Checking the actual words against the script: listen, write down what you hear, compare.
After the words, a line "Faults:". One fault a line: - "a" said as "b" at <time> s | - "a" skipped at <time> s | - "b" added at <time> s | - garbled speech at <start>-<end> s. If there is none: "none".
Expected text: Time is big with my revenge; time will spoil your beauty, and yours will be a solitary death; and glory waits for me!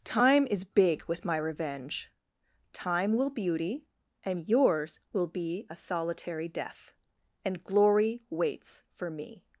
Time is big with my revenge; time will beauty, and yours will be a solitary death; and glory waits for me!
Faults:
- "spoil your" skipped at 3.3 s